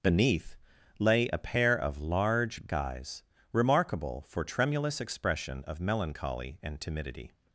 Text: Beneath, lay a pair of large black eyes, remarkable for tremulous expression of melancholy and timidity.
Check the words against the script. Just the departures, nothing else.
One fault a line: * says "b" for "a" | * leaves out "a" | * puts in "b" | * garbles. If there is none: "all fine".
* leaves out "black"